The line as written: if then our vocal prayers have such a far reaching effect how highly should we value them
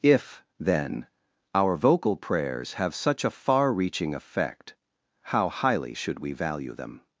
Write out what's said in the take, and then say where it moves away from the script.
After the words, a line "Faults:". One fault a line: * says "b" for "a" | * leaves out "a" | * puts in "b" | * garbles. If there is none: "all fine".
if then our vocal prayers have such a far reaching effect how highly should we value them
Faults:
all fine